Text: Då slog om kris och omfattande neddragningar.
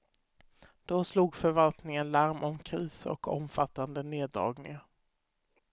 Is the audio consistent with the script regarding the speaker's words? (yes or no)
no